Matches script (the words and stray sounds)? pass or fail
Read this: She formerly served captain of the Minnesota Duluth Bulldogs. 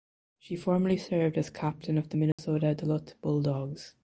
fail